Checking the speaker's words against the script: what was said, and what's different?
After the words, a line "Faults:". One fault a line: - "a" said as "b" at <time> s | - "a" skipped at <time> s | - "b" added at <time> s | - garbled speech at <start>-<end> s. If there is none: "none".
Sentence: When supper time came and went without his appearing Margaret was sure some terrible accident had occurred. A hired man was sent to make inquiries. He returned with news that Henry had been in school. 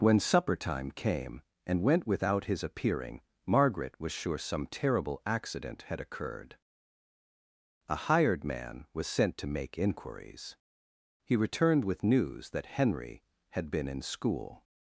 When supper time came and went without his appearing Margaret was sure some terrible accident had occurred. A hired man was sent to make inquiries. He returned with news that Henry had been in school.
Faults:
none